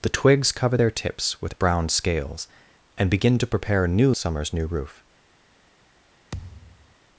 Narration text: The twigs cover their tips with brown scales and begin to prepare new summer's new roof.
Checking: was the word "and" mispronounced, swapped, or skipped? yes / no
no